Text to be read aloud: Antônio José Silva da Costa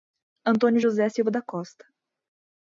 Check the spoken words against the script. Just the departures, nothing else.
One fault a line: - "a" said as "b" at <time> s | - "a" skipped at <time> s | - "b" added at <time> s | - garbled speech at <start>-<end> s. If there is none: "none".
none